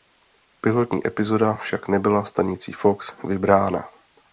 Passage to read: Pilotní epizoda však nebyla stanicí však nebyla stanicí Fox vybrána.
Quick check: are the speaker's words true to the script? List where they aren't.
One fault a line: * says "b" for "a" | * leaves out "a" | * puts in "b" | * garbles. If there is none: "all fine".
* leaves out "však nebyla stanicí"